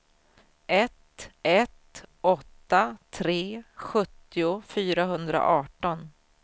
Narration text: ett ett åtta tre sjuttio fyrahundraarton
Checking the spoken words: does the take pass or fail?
pass